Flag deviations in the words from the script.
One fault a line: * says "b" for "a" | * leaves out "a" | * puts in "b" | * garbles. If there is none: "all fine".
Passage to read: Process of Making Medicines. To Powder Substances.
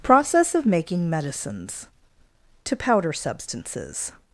all fine